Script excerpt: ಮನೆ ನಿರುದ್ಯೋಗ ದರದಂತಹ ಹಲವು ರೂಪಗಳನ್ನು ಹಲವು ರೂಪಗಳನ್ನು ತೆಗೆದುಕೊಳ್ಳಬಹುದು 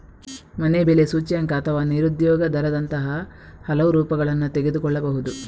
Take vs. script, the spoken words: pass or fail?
fail